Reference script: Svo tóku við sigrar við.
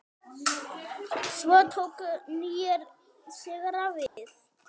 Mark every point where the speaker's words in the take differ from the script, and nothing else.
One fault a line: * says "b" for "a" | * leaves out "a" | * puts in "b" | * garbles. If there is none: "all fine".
* says "nýir" for "við"